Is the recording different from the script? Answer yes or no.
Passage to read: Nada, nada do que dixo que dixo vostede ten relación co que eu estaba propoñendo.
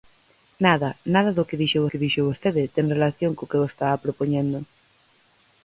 no